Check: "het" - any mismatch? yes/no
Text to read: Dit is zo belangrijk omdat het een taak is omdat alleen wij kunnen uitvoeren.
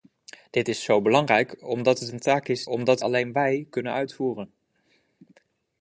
no